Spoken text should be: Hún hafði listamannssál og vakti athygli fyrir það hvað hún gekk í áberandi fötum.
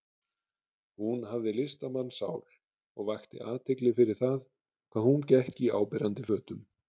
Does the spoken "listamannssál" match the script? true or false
true